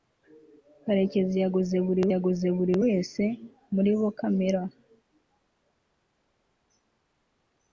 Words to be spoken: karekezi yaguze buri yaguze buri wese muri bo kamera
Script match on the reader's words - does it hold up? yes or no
yes